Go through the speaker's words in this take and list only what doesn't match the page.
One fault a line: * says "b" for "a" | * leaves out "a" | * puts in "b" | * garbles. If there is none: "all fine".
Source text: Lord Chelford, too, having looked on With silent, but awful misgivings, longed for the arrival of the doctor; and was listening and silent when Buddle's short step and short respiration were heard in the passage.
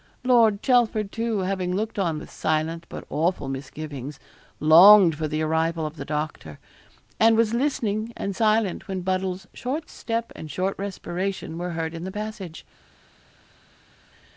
all fine